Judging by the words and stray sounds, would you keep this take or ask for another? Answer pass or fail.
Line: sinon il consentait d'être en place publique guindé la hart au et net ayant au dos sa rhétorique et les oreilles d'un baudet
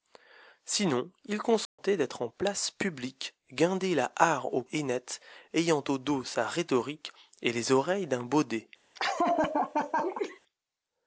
fail